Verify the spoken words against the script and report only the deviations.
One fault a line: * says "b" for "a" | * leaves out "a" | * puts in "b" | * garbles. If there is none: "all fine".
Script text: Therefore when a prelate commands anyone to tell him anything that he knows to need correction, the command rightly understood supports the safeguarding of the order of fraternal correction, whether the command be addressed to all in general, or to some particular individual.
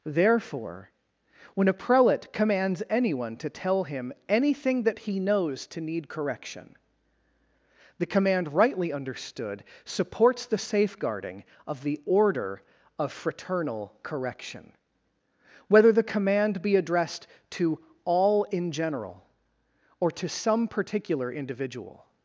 all fine